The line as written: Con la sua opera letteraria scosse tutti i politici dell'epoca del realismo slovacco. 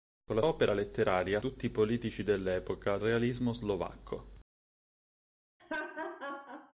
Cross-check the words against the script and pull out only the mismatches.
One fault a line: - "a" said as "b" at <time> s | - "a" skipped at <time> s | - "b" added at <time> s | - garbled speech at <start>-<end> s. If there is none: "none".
- "sua" skipped at 0.4 s
- "scosse" skipped at 1.4 s
- "del" skipped at 3.0 s